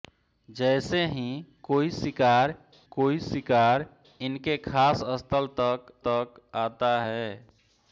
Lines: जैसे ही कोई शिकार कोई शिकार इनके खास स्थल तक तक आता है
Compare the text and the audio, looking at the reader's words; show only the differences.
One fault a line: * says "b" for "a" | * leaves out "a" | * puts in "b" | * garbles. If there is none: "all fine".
all fine